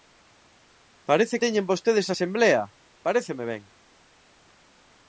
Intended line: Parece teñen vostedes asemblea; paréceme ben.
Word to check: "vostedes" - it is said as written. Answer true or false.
true